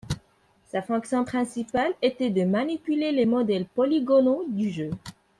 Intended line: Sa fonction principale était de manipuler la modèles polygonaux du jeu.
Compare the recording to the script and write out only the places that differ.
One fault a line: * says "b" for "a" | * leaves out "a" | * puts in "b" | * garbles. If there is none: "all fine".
* says "les" for "la"